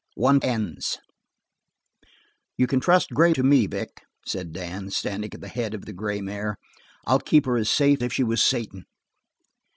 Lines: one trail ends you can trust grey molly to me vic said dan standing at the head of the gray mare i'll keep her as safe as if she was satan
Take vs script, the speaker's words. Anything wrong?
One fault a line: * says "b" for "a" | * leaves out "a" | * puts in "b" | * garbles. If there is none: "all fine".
* leaves out "trail"
* leaves out "molly"
* leaves out "as"